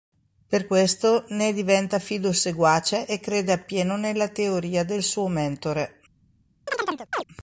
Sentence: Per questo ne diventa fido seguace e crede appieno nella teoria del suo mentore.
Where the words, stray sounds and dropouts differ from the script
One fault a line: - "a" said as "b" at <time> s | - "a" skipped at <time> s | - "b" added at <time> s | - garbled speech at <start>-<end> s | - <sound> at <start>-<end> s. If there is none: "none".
- chirp at 6.7-7.2 s